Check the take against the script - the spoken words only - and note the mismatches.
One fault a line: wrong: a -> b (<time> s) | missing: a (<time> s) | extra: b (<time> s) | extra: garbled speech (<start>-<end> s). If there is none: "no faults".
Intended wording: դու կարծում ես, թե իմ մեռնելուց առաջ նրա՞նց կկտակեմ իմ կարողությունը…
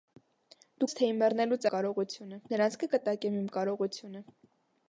missing: կարծում (0.9 s)
wrong: առաջ -> կարողությունը (1.7 s)